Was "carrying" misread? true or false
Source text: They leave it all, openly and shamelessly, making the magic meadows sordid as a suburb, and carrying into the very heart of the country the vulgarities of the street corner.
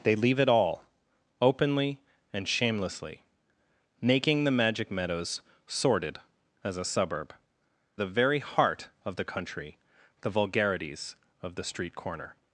true